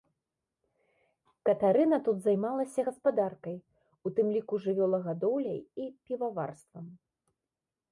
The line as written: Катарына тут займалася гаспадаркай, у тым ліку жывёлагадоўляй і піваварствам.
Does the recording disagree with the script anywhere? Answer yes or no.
no